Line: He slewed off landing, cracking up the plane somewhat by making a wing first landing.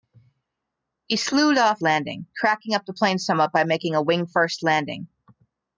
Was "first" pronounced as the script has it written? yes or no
yes